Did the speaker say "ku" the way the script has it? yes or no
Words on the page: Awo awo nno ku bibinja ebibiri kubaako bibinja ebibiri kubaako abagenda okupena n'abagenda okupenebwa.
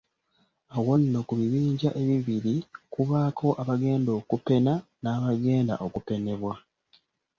yes